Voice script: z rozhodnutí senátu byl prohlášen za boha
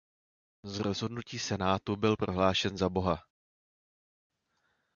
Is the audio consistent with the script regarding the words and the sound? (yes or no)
yes